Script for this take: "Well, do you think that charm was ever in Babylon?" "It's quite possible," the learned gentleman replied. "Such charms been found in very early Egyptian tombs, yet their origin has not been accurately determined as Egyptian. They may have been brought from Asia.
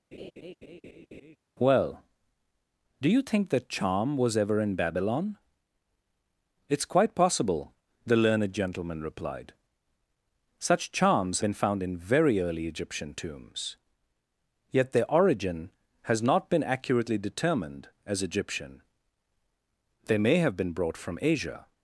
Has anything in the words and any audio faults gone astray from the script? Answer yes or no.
yes